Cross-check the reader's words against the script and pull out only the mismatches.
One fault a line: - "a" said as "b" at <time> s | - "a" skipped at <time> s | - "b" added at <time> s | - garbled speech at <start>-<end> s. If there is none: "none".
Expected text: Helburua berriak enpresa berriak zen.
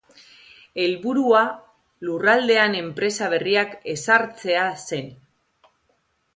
- "berriak" said as "lurraldean" at 2.1 s
- "ezartzea" added at 4.0 s